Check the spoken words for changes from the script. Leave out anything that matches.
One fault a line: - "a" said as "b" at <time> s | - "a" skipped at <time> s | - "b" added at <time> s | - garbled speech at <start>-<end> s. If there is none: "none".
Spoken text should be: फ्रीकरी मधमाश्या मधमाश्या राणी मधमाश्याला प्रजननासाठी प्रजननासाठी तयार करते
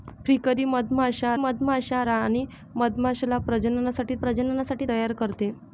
none